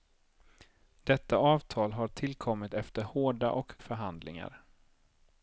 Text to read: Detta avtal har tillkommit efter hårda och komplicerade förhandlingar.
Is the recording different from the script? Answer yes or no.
yes